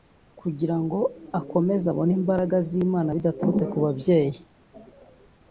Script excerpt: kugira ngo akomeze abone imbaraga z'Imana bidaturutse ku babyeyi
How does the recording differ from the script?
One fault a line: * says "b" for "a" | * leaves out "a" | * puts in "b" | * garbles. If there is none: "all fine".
all fine